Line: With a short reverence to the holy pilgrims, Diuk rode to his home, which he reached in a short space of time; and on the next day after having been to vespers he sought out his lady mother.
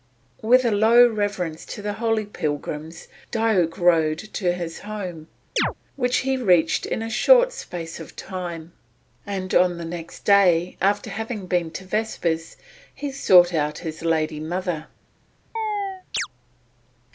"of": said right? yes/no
yes